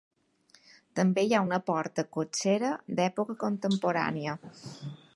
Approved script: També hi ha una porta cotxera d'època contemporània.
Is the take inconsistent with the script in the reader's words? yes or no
no